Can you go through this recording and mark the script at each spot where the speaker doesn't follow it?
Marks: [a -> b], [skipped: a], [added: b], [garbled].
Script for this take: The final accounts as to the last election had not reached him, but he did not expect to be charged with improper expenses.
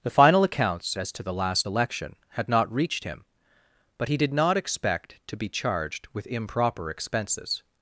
The final accounts as to the last election had not reached him, but he did not expect to be charged with improper expenses.